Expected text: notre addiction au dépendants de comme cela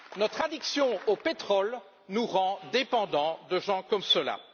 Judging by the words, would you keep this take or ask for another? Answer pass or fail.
fail